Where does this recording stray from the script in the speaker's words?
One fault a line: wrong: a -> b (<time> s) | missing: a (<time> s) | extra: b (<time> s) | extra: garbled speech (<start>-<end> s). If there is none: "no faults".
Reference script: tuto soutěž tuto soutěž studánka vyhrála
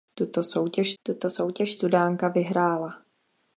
no faults